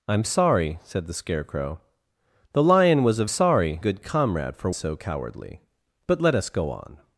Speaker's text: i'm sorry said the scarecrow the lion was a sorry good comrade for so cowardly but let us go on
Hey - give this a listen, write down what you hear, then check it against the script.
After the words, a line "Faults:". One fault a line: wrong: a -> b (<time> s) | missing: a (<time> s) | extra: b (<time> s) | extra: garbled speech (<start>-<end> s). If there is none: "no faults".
i'm sorry said the scarecrow the lion was a sorry good comrade for so cowardly but let us go on
Faults:
no faults